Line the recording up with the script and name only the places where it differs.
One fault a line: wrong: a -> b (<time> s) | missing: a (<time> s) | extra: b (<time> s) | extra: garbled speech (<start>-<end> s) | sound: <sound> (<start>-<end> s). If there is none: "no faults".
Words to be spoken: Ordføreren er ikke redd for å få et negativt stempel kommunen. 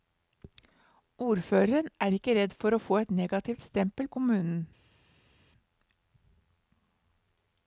no faults